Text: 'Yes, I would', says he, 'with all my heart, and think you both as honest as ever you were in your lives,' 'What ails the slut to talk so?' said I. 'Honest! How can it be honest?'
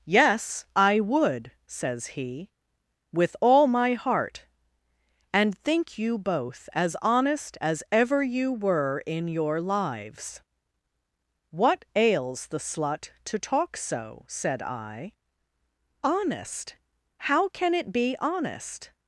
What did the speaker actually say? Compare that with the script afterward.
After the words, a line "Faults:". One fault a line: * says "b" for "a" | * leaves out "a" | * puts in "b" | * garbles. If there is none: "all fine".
'Yes, I would', says he, 'with all my heart, and think you both as honest as ever you were in your lives,' 'What ails the slut to talk so?' said I. 'Honest! How can it be honest?'
Faults:
all fine